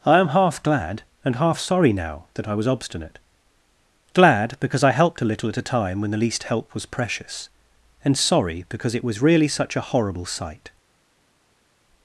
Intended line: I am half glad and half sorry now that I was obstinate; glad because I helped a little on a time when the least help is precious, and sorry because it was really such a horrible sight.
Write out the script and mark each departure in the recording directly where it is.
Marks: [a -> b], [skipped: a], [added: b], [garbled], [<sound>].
I am half glad and half sorry now that I was obstinate; glad because I helped a little [on -> at] a time when the least help [is -> was] precious, and sorry because it was really such a horrible sight.